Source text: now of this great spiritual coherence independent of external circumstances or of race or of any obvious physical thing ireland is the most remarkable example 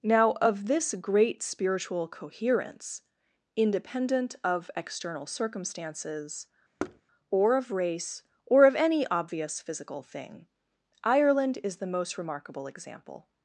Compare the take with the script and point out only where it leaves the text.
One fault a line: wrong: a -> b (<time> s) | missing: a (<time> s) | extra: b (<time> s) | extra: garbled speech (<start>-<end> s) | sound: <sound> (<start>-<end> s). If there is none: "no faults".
sound: thud (6.8-7.0 s)